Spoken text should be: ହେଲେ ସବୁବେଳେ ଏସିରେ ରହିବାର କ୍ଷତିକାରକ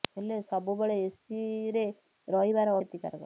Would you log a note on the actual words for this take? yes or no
no